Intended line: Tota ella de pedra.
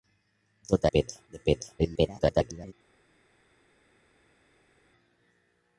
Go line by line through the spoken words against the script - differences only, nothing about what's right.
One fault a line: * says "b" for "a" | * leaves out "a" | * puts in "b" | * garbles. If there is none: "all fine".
* says "pedra" for "ella"
* garbles